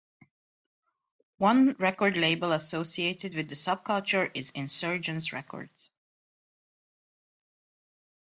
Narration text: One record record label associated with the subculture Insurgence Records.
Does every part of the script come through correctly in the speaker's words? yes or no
no